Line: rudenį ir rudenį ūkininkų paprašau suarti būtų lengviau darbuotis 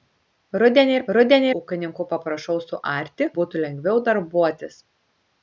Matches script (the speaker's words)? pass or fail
pass